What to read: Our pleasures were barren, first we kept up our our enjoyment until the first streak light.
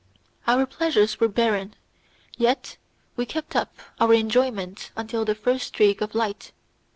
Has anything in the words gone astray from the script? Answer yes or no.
yes